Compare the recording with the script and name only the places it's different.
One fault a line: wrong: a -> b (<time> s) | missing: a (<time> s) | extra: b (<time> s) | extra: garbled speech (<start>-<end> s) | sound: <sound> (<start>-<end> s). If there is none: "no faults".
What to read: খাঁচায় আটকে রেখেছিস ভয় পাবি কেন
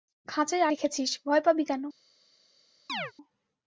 missing: আটকে (0.7 s)
sound: chirp (2.9-3.1 s)